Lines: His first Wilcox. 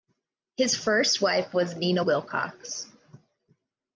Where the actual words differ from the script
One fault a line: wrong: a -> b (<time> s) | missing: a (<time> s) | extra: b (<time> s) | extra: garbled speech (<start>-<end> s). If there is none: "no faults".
extra: wife was Nina (1.2 s)